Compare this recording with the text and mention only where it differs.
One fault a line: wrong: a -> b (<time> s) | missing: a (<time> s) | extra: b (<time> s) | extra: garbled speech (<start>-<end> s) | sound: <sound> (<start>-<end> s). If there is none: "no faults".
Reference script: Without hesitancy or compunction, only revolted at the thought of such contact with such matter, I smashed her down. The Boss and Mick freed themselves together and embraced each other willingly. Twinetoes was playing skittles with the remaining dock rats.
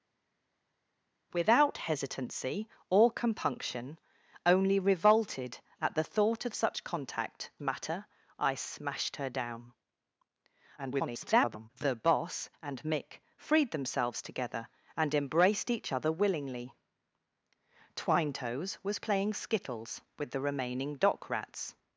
missing: with such (7.5 s)
extra: garbled speech (10.8-11.7 s)